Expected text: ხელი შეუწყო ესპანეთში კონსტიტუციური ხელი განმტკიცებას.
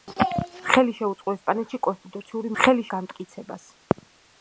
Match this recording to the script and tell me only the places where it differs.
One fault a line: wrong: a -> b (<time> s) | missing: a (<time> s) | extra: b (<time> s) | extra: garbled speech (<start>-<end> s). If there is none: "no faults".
no faults